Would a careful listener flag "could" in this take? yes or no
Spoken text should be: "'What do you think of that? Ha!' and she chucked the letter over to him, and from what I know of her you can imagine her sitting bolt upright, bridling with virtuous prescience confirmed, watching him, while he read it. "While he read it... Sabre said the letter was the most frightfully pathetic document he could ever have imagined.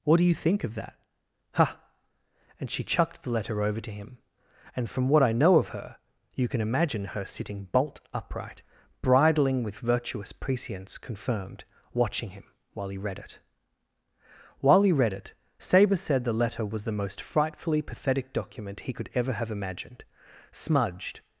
no